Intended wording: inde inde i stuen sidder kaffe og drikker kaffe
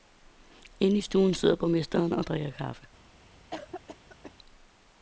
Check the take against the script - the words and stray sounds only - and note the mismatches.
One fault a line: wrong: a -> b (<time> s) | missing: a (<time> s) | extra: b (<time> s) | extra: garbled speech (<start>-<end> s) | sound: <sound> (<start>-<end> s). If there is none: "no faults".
missing: inde (1.0 s)
wrong: kaffe -> borgmesteren (1.6 s)
sound: cough (3.5-4.3 s)